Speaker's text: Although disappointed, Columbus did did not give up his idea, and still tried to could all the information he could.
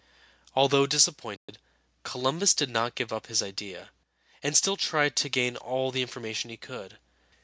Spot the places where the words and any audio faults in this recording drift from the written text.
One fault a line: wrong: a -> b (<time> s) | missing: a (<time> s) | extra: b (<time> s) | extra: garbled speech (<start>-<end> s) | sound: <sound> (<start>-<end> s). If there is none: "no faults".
sound: dropout (1.4-1.5 s)
missing: did (2.7 s)
wrong: could -> gain (5.3 s)